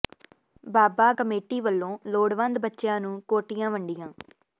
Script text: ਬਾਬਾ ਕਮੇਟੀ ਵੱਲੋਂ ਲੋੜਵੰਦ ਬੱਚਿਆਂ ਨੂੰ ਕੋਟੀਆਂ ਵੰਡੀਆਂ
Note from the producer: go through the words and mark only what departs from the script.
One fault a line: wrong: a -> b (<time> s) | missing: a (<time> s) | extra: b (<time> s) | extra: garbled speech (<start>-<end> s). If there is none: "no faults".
no faults